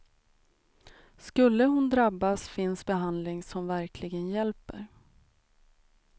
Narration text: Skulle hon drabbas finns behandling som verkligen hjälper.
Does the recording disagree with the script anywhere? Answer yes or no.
no